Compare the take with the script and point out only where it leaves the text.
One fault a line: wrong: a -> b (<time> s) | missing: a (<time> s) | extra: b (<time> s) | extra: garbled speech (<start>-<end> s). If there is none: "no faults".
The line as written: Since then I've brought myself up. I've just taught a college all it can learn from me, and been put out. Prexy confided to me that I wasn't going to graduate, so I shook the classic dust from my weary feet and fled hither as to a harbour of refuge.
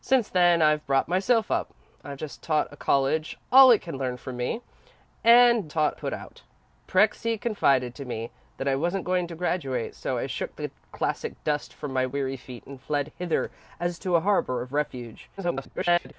wrong: been -> taught (5.7 s)
extra: garbled speech (15.4-16.1 s)